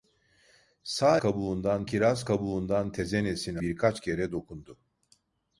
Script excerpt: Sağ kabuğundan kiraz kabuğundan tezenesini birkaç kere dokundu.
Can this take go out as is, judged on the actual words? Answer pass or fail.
pass